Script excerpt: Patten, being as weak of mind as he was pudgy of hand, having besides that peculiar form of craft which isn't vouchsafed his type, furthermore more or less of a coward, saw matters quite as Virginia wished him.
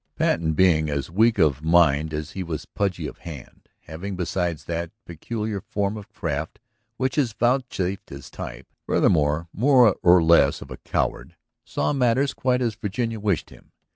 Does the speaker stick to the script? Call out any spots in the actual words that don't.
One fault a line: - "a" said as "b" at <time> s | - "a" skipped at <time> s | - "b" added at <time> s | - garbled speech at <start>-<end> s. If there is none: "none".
- "isn't" said as "is" at 7.2 s